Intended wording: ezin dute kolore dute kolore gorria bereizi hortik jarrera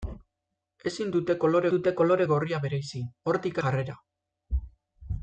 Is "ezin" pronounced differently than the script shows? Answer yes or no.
no